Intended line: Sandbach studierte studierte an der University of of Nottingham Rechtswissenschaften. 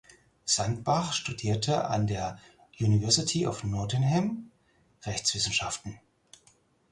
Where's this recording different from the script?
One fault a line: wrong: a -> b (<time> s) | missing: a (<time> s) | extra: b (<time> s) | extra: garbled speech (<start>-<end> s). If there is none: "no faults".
missing: studierte (1.9 s)
missing: of (3.6 s)